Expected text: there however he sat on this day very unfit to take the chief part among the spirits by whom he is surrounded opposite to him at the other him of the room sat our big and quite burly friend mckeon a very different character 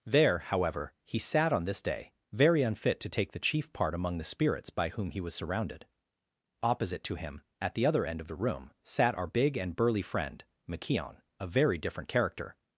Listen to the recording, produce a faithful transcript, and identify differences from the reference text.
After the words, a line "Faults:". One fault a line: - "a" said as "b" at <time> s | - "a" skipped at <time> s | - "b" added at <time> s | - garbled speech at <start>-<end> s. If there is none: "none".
there however he sat on this day very unfit to take the chief part among the spirits by whom he was surrounded opposite to him at the other end of the room sat our big and burly friend mckeon a very different character
Faults:
- "is" said as "was" at 5.2 s
- "him" said as "end" at 8.1 s
- "quite" skipped at 9.7 s